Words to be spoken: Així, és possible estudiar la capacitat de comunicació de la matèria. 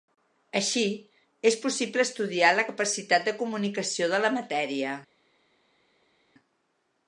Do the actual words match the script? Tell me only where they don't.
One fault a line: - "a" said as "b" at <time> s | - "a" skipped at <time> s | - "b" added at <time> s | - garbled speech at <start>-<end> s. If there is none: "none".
none